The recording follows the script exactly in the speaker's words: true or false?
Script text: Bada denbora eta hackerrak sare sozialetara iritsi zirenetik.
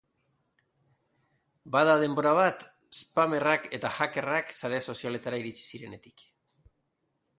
false